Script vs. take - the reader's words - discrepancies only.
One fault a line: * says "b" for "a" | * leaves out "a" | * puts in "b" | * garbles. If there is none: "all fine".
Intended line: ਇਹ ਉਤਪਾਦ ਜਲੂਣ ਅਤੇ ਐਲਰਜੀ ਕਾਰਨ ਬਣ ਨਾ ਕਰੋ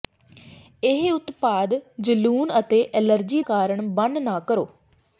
all fine